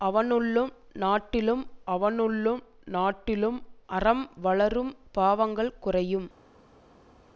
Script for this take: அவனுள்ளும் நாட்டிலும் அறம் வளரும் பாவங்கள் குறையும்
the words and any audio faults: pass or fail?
fail